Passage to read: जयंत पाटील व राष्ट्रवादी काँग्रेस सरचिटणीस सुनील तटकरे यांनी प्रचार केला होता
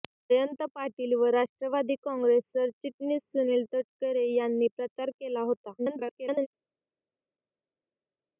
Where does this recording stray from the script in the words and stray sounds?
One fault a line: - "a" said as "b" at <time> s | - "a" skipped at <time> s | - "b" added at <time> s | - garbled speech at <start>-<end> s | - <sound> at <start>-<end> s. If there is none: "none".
- garbled speech at 5.8-6.5 s